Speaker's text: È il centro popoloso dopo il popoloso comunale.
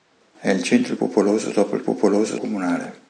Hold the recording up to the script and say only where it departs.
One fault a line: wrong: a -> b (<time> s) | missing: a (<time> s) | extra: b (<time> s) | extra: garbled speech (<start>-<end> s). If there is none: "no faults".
no faults